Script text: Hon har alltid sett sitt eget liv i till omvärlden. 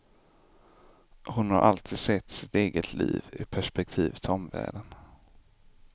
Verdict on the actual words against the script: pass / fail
fail